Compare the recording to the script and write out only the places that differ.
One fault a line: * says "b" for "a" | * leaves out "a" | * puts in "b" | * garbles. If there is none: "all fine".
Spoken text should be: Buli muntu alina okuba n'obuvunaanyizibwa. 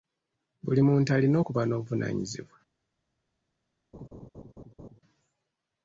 all fine